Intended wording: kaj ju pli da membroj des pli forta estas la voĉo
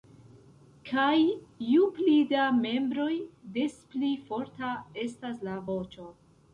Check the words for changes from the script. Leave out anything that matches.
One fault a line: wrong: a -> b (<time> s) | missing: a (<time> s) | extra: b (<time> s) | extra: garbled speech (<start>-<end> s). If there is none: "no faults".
no faults